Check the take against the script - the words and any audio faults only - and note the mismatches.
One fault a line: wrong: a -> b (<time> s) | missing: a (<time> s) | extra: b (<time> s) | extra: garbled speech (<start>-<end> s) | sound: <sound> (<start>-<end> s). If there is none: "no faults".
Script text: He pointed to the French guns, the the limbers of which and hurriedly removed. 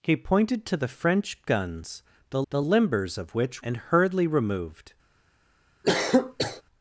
sound: cough (5.8-6.6 s)